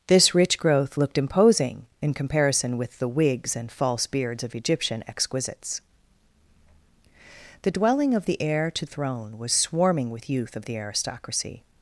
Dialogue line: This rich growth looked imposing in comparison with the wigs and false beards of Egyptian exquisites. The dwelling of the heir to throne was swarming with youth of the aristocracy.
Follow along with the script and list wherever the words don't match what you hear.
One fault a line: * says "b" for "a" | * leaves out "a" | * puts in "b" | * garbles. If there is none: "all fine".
all fine